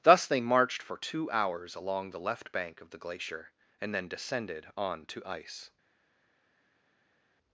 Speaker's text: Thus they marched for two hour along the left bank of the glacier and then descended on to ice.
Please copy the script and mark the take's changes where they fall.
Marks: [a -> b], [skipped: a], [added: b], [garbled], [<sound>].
Thus they marched for two [hour -> hours] along the left bank of the glacier and then descended on to ice.